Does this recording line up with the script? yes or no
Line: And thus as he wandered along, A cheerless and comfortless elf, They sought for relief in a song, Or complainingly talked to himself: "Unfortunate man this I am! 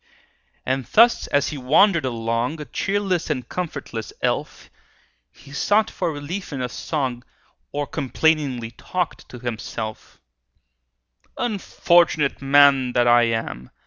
no